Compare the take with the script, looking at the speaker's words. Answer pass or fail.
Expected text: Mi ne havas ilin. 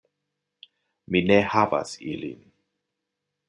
pass